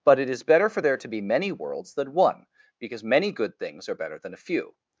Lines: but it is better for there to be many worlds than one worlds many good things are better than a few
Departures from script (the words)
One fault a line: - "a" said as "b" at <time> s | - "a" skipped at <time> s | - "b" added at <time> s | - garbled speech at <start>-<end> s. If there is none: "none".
- "worlds" said as "because" at 2.8 s